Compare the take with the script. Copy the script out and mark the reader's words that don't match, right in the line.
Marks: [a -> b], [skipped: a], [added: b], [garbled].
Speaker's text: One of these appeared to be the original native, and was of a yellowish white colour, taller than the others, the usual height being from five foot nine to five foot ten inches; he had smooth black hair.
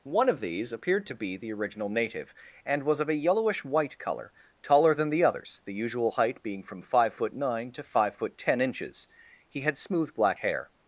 One of these appeared to be the original native, and was of a yellowish white colour, taller than the others, the usual height being from five foot nine to five foot ten inches; he had smooth black hair.